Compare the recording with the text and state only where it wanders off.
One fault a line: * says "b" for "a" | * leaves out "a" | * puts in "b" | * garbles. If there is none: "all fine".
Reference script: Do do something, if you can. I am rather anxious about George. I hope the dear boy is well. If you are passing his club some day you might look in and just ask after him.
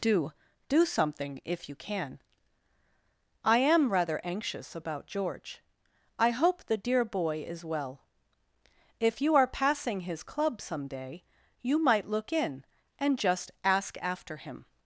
all fine